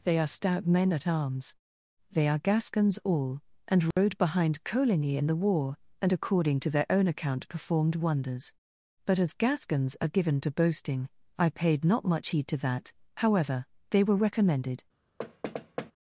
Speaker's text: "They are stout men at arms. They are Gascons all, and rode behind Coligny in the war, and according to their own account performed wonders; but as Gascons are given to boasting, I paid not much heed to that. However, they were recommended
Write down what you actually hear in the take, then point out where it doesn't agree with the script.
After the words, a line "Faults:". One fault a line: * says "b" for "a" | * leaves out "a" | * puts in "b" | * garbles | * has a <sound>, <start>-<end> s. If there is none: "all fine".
"They are stout men at arms. They are Gascons all, and rode behind Coligny in the war, and according to their own account performed wonders; but as Gascons are given to boasting, I paid not much heed to that. However, they were recommended
Faults:
* has a dropout, 3.9-4.0 s
* has a thud, 15.2-15.9 s